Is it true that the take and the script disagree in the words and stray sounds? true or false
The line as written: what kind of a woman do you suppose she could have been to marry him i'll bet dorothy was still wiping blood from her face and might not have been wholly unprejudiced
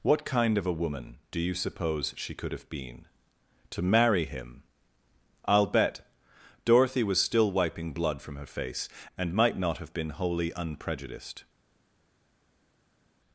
false